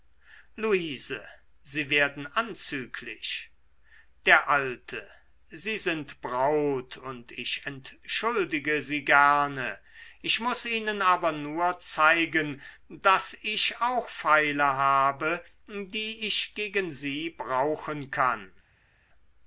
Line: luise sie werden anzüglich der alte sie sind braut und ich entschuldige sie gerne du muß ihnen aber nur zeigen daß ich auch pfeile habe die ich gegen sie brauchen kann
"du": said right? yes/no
no